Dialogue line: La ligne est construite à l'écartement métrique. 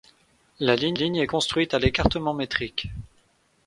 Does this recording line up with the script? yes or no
no